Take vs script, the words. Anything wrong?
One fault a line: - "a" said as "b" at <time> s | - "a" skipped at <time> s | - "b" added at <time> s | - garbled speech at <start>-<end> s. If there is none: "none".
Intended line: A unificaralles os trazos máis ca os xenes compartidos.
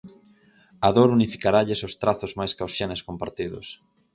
- "dor" added at 1.0 s